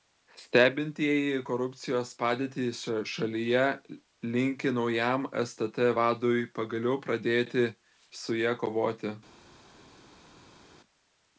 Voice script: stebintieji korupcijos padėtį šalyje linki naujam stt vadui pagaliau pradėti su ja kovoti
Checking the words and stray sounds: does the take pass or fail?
pass